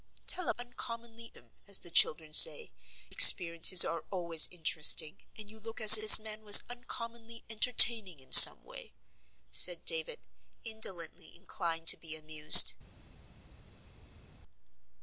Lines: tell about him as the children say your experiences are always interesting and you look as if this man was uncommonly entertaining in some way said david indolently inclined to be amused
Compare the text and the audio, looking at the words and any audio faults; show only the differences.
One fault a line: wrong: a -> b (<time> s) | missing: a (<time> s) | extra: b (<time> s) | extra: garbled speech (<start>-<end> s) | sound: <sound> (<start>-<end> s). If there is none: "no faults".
wrong: about -> uncommonly (0.6 s)
missing: your (2.7 s)
missing: if (6.0 s)